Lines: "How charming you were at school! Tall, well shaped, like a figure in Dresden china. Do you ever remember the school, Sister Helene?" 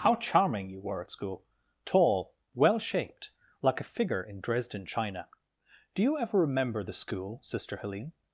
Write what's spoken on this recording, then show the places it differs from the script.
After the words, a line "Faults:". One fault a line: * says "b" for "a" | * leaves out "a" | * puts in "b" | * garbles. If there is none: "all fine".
"How charming you were at school! Tall, well shaped, like a figure in Dresden china. Do you ever remember the school, Sister Helene?"
Faults:
all fine